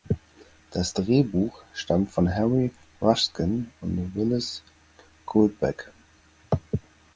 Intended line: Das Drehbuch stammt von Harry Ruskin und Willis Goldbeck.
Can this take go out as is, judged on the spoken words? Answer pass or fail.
pass